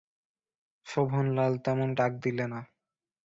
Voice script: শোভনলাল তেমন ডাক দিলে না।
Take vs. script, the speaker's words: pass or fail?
pass